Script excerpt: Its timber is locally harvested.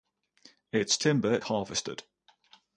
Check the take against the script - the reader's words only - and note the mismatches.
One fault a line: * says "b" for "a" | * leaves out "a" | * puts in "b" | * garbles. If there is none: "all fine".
* leaves out "is locally"